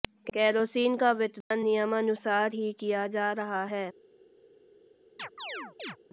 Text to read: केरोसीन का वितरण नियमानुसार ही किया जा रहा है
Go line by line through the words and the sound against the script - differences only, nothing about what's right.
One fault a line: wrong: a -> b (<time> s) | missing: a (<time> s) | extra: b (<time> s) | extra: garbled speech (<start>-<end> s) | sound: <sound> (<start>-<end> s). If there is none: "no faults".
sound: dropout (1.4-1.5 s)
sound: chirp (5.2-6.0 s)